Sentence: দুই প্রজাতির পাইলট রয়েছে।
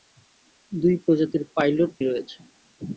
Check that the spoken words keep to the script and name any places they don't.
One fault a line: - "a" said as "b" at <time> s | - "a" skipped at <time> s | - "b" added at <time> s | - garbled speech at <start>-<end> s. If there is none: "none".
none